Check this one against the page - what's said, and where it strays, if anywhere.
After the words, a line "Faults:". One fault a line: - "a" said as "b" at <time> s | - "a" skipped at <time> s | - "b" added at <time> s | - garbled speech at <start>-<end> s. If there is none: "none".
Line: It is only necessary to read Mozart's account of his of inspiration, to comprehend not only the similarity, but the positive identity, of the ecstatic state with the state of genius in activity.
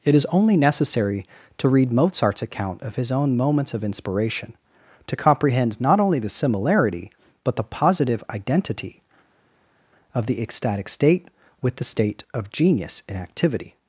It is only necessary to read Mozart's account of his own moments of inspiration, to comprehend not only the similarity, but the positive identity, of the ecstatic state with the state of genius in activity.
Faults:
- "own moments" added at 3.1 s